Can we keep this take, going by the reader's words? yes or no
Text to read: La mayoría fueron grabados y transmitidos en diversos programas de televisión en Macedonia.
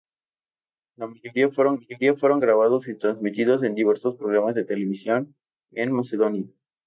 no